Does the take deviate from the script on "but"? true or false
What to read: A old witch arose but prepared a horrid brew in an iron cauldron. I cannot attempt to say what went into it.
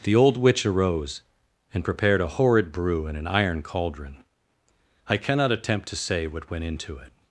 true